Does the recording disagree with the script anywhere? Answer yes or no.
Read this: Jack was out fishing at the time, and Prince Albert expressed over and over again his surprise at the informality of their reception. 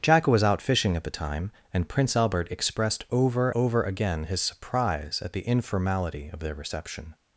yes